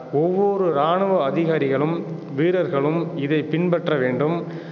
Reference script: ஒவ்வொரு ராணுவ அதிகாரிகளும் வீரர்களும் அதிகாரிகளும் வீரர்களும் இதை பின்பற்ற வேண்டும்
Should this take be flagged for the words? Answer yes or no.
yes